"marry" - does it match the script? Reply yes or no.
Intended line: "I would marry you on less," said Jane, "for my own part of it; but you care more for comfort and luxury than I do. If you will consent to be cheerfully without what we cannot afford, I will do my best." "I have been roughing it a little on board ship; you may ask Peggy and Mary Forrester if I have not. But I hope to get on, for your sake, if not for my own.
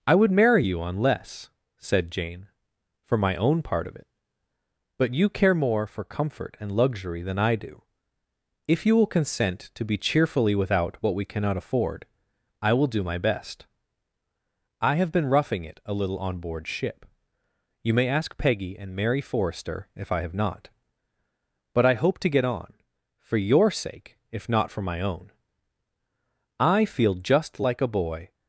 yes